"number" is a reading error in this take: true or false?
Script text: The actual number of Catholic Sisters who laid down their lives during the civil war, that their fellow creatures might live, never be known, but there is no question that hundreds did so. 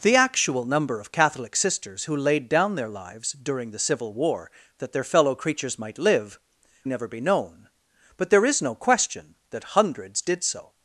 false